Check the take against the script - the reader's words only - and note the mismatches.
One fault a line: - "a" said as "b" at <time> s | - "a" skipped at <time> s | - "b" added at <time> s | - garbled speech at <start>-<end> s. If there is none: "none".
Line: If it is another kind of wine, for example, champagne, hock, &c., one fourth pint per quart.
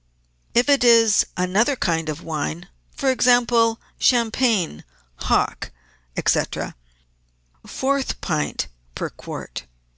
- "one" skipped at 6.4 s